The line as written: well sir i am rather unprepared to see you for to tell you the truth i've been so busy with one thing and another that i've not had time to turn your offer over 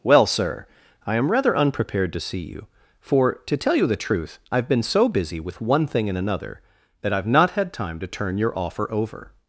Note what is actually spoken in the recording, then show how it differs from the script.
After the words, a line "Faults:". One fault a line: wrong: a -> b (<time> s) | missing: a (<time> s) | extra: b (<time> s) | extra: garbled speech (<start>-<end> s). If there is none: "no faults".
well sir i am rather unprepared to see you for to tell you the truth i've been so busy with one thing and another that i've not had time to turn your offer over
Faults:
no faults